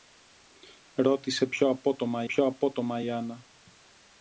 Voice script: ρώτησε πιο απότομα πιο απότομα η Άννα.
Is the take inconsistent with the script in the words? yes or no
no